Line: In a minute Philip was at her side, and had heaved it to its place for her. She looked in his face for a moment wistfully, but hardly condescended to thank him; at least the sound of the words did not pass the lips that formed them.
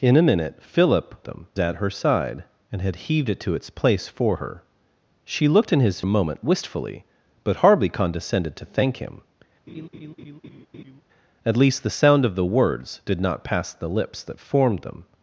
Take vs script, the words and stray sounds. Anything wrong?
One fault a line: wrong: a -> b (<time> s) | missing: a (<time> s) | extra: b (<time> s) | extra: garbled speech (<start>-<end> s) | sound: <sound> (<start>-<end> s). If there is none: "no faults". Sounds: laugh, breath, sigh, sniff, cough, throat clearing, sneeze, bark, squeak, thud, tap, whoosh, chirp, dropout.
wrong: was -> them (1.2 s)
missing: face for (6.0 s)
sound: laugh (9.7-11.0 s)